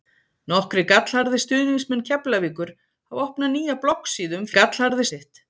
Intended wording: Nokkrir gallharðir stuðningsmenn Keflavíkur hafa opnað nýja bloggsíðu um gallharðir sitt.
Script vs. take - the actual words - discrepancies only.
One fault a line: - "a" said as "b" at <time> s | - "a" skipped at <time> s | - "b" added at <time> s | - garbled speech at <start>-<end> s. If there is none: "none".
none